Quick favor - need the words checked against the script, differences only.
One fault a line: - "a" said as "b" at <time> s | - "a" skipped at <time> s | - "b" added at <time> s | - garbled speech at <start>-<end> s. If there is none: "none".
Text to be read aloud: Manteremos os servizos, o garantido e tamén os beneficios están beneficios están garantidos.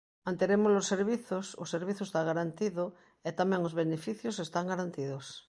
- "servizo está" added at 1.7 s
- "beneficios están" skipped at 4.7 s